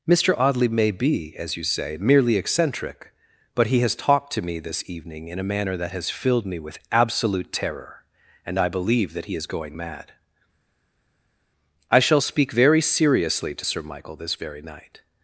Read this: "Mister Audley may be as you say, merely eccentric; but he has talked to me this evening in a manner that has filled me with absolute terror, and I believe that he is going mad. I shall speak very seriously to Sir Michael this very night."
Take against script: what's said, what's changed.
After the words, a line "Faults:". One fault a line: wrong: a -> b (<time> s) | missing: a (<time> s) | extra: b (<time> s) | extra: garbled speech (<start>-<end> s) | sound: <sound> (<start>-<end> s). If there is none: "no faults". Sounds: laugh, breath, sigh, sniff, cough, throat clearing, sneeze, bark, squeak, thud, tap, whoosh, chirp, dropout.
"Mister Audley may be as you say, merely eccentric; but he has talked to me this evening in a manner that has filled me with absolute terror, and I believe that he is going mad. I shall speak very seriously to Sir Michael this very night."
Faults:
no faults